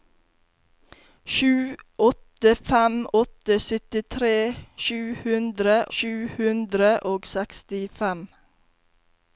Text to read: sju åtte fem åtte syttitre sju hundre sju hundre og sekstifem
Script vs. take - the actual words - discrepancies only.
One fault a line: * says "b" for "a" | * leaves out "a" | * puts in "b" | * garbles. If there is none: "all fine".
all fine